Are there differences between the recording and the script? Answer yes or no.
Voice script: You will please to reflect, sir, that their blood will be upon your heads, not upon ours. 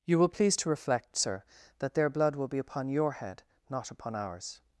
yes